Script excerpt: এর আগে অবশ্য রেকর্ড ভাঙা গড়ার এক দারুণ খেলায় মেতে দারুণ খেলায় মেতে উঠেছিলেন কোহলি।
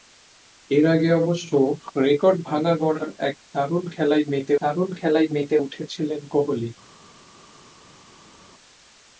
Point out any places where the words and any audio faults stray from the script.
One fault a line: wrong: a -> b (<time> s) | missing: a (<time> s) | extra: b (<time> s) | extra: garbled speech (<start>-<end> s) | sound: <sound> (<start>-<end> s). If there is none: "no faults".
no faults